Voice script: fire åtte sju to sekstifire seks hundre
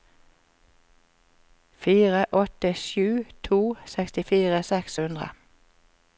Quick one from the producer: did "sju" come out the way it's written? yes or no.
yes